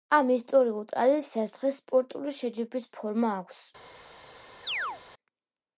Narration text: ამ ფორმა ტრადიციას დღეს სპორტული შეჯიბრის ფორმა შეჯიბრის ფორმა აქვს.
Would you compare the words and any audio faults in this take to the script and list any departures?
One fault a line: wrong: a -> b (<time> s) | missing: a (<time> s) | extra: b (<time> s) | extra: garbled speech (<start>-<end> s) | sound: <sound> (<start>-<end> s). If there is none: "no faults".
wrong: ფორმა -> ისტორიულ (0.3 s)
missing: შეჯიბრის ფორმა (3.4 s)
sound: chirp (4.6-5.0 s)